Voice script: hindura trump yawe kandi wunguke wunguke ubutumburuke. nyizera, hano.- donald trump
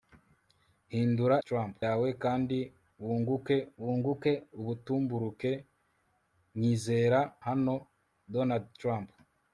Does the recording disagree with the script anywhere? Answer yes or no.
no